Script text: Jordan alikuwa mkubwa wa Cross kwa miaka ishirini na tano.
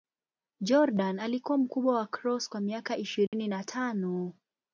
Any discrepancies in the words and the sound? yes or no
yes